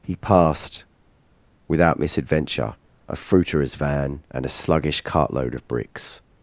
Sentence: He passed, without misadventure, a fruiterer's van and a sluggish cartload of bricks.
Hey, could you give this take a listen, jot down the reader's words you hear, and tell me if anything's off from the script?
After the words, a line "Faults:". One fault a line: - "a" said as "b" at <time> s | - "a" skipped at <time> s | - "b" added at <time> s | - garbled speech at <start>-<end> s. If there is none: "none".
He passed, without misadventure, a fruiterer's van and a sluggish cartload of bricks.
Faults:
none